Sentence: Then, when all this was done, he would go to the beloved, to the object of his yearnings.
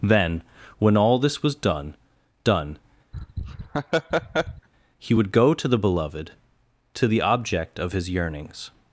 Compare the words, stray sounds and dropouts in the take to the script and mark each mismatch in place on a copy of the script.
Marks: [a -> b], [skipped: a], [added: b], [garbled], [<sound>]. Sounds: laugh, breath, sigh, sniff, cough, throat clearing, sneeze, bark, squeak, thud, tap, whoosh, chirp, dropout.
Then, when all this was done, [added: done] [laugh] he would go to the beloved, to the object of his yearnings.